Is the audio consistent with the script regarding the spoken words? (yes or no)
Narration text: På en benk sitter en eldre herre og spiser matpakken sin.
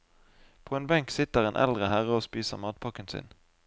yes